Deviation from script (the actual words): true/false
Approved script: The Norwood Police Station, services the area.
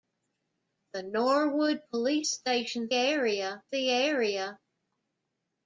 true